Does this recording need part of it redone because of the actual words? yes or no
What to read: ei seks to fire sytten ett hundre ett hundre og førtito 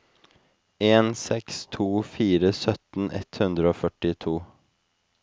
yes